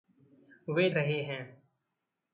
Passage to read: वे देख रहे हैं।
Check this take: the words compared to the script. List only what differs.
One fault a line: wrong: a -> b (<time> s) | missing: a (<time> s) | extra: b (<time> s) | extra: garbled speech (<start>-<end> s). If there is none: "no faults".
missing: देख (0.9 s)